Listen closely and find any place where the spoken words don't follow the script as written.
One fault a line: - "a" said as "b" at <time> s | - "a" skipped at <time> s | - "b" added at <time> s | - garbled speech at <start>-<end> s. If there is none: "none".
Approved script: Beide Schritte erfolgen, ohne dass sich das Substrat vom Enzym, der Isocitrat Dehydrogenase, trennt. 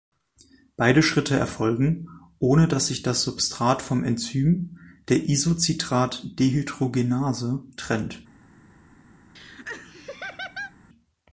none